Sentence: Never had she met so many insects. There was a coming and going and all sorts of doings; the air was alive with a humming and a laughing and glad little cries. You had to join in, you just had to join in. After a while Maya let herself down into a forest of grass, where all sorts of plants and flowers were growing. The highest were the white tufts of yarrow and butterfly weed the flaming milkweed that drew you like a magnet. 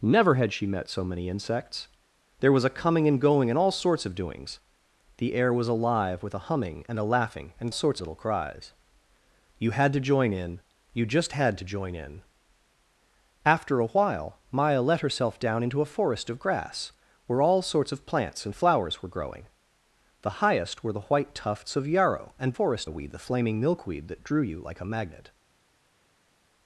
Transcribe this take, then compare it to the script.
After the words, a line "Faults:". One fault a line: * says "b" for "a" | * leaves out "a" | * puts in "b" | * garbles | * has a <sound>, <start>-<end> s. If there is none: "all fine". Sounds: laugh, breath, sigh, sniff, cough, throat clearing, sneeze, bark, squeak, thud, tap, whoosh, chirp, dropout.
Never had she met so many insects. There was a coming and going and all sorts of doings; the air was alive with a humming and a laughing and sorts little cries. You had to join in, you just had to join in. After a while Maya let herself down into a forest of grass, where all sorts of plants and flowers were growing. The highest were the white tufts of yarrow and forest weed the flaming milkweed that drew you like a magnet.
Faults:
* says "sorts" for "glad"
* says "forest" for "butterfly"